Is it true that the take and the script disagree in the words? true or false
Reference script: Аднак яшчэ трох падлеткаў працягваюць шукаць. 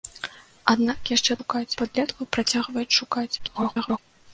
true